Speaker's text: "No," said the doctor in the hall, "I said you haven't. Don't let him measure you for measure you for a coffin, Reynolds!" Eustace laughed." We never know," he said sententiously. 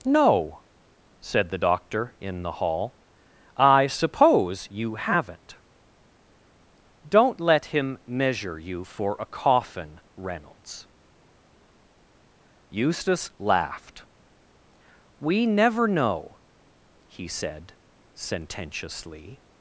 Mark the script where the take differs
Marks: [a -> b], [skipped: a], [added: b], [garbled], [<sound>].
"No," said the doctor in the hall, "I [said -> suppose] you haven't. Don't let him measure you for [skipped: measure you for] a coffin, Reynolds!" Eustace laughed." We never know," he said sententiously.